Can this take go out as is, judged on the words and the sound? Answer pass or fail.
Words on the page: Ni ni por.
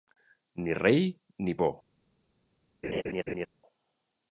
fail